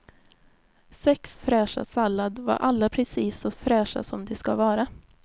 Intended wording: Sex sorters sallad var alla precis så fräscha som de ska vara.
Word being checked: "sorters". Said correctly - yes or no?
no